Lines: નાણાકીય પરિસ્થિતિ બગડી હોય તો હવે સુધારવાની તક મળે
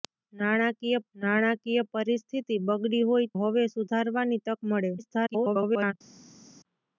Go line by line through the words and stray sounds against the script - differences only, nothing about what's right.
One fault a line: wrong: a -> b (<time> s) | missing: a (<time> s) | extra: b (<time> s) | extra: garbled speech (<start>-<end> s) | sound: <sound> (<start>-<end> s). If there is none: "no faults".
extra: નાણાકીય (1.2 s)
missing: તો (3.3 s)
extra: garbled speech (5.0-5.9 s)